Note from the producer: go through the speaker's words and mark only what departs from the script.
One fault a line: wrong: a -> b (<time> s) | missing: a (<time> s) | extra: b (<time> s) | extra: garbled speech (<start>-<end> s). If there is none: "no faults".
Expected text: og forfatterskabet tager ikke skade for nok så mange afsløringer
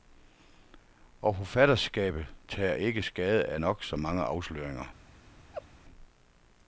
wrong: for -> af (3.5 s)